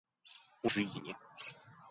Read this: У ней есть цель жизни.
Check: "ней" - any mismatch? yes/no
yes